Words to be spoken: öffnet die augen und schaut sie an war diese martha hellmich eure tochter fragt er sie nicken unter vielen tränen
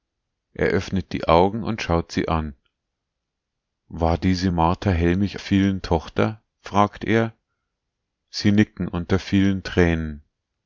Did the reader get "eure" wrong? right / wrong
wrong